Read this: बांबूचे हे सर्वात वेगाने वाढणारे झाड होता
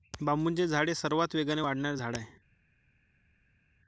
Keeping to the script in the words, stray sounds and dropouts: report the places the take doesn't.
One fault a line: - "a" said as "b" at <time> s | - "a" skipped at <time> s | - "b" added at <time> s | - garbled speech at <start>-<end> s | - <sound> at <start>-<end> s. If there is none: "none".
- "झाड" added at 0.7 s
- "होता" said as "आहे" at 2.2 s